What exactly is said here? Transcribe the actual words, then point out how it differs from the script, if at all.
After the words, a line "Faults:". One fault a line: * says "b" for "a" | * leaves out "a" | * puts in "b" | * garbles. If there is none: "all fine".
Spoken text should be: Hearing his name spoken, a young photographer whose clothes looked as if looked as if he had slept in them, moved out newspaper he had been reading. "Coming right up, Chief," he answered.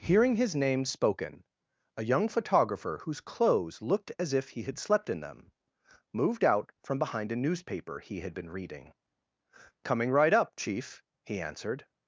Hearing his name spoken, a young photographer whose clothes looked as if he had slept in them, moved out from behind a newspaper he had been reading. "Coming right up, Chief," he answered.
Faults:
* leaves out "looked as if"
* puts in "from behind a"